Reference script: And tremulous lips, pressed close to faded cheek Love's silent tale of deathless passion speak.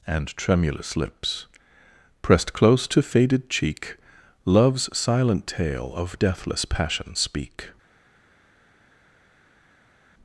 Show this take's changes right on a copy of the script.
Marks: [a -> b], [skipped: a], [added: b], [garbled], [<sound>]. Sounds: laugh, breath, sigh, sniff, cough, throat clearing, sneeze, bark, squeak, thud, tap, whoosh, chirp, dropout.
And tremulous lips, pressed close to faded cheek Love's silent tale of deathless passion speak.